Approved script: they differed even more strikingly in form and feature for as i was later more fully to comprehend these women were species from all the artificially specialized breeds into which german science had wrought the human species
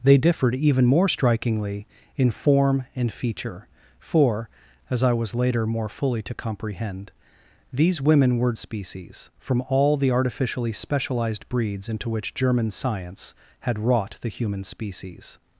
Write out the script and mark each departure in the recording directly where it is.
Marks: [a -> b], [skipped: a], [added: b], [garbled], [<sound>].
they differed even more strikingly in form and feature for as i was later more fully to comprehend these women were species from all the artificially specialized breeds into which german science had wrought the human species